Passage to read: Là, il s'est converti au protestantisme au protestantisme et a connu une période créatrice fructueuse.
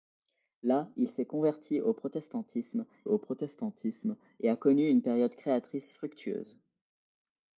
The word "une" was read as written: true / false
true